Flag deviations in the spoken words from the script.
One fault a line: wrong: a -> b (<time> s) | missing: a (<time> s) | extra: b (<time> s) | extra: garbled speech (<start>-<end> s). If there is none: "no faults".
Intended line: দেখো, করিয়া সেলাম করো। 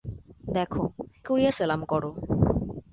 no faults